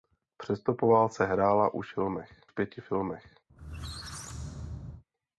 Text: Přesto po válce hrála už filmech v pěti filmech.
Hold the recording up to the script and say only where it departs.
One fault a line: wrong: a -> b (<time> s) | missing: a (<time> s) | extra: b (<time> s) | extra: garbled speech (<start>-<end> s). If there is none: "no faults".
no faults